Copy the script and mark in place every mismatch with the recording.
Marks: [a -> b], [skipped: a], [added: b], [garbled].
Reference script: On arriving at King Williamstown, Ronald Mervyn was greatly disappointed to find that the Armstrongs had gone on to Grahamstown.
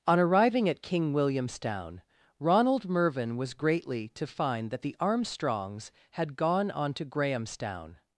On arriving at King Williamstown, Ronald Mervyn was greatly [skipped: disappointed] to find that the Armstrongs had gone on to Grahamstown.